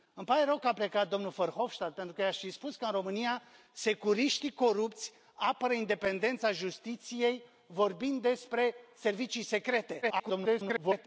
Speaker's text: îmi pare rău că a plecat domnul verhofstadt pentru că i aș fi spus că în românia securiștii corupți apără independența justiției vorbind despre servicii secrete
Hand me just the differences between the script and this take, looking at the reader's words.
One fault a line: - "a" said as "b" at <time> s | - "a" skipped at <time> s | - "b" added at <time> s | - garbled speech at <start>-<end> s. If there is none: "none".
- garbled speech at 10.0-11.1 s